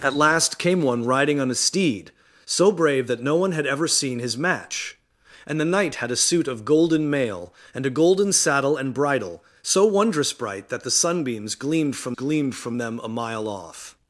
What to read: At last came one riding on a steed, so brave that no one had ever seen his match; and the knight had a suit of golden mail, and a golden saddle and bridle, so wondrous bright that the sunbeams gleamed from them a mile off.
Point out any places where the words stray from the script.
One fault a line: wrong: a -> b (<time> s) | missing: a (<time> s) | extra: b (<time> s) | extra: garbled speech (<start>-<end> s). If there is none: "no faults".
extra: gleamed from (12.1 s)